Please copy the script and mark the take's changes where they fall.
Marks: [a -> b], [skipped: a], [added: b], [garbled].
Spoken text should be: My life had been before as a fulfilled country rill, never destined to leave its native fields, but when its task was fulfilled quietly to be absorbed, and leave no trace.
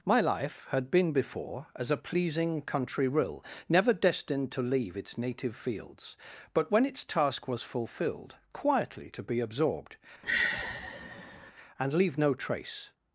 My life had been before as a [fulfilled -> pleasing] country rill, never destined to leave its native fields, but when its task was fulfilled quietly to be absorbed, and leave no trace.